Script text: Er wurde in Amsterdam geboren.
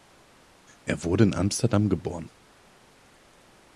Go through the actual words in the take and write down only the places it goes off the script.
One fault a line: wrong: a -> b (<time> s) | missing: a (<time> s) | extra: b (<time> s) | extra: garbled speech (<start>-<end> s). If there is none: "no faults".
no faults